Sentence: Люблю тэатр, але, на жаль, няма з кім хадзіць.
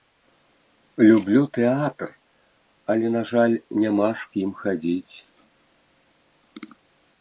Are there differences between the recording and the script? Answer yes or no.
no